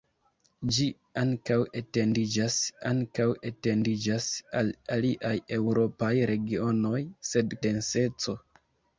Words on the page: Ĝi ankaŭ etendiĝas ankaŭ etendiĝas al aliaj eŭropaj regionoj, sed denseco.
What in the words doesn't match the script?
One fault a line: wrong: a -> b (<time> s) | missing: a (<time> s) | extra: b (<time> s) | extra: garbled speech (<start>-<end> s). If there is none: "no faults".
no faults